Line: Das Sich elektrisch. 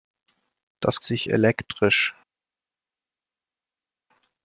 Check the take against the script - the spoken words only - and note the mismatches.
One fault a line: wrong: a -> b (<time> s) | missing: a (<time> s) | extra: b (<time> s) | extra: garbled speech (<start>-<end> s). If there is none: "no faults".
no faults